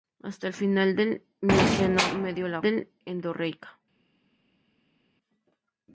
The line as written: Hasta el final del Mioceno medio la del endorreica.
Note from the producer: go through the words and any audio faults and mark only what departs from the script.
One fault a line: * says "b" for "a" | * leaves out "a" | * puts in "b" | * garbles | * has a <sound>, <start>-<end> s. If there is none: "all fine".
all fine